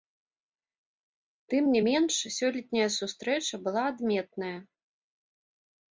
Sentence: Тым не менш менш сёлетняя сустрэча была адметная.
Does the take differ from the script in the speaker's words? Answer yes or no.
yes